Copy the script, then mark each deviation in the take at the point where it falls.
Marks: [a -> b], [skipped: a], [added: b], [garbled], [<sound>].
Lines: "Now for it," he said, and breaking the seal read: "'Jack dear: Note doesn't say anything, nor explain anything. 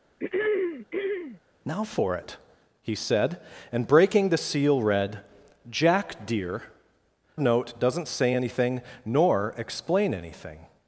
[throat clearing] "Now for it," he said, and breaking the seal read: "'Jack dear: Note doesn't say anything, nor explain anything.